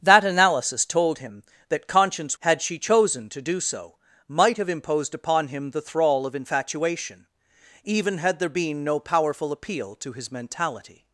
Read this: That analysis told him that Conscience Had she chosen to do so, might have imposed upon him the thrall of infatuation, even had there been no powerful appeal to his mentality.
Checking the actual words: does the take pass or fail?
pass